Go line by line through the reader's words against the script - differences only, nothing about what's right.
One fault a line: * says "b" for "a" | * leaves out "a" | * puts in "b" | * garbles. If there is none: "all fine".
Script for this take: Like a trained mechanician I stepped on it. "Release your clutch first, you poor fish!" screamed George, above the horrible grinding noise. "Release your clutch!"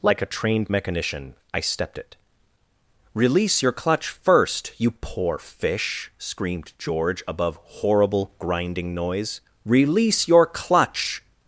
* leaves out "on"
* leaves out "the"